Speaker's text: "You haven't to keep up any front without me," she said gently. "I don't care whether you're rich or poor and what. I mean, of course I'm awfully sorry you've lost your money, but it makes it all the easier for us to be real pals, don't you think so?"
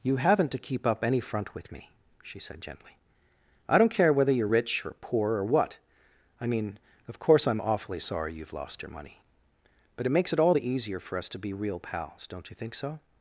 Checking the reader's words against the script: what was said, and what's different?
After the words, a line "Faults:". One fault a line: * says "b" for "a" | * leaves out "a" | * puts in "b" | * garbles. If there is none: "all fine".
"You haven't to keep up any front with me," she said gently. "I don't care whether you're rich or poor or what. I mean, of course I'm awfully sorry you've lost your money, but it makes it all the easier for us to be real pals, don't you think so?"
Faults:
* says "with" for "without"
* says "or" for "and"